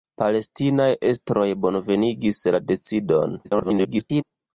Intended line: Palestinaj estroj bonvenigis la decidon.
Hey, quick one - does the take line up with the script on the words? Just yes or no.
no